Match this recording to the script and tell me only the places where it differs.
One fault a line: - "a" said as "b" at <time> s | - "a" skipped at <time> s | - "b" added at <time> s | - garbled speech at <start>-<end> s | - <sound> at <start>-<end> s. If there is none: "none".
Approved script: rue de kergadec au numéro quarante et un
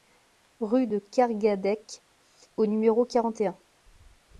none